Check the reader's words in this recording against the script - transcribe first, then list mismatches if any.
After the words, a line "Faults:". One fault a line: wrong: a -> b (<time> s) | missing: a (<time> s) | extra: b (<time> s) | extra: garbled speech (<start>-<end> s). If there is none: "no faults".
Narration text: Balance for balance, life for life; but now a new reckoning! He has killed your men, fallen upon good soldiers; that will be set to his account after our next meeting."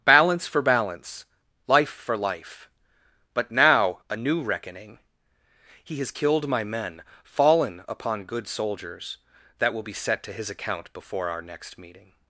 Balance for balance, life for life; but now a new reckoning! He has killed my men, fallen upon good soldiers; that will be set to his account before our next meeting."
Faults:
wrong: your -> my (6.5 s)
wrong: after -> before (10.9 s)